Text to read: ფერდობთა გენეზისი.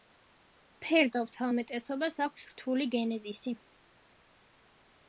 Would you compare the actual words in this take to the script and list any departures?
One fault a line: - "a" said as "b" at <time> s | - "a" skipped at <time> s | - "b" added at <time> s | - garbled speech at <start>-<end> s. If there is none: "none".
- "უმეტესობას აქვს რთული" added at 1.5 s